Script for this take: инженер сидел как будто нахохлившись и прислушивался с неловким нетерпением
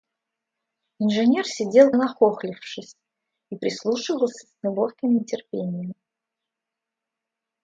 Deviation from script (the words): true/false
true